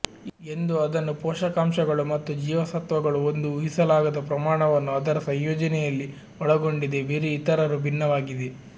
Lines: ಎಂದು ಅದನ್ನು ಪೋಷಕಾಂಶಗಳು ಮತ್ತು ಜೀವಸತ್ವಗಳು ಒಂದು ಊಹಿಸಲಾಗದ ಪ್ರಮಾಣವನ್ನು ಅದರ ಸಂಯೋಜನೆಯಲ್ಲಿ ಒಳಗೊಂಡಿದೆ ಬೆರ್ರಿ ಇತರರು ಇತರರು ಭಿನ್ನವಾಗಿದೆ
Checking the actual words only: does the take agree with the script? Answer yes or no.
no